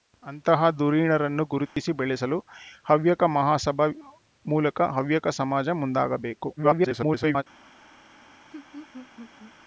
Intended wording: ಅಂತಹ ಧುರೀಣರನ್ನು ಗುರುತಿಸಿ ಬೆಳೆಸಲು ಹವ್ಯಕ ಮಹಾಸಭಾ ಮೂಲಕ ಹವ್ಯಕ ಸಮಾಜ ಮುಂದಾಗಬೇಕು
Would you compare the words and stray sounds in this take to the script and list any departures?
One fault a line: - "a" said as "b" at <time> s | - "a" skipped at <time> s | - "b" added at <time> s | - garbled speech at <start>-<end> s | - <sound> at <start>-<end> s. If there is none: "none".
- dropout at 1.7-1.8 s
- garbled speech at 6.6-7.4 s
- laugh at 8.5-9.6 s